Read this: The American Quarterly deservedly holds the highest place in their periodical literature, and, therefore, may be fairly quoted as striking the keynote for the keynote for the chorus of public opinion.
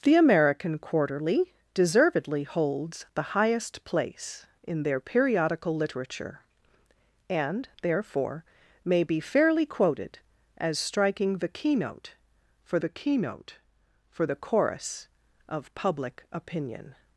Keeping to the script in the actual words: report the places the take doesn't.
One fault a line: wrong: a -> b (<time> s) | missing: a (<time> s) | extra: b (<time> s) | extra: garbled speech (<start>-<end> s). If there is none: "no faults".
no faults